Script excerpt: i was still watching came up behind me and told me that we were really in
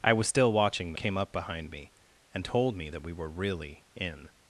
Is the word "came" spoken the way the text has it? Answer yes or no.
yes